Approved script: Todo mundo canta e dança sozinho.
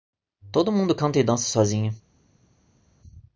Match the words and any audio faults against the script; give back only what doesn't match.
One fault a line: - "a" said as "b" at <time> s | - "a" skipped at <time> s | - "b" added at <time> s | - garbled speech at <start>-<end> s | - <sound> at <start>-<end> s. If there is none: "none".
none